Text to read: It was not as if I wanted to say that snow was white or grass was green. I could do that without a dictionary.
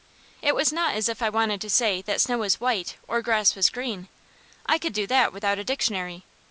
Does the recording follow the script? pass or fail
pass